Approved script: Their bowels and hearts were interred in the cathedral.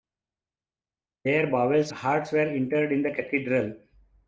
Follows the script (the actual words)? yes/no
no